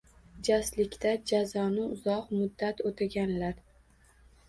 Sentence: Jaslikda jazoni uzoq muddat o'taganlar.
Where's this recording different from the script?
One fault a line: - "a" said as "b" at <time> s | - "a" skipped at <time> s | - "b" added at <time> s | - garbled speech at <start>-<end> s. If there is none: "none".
none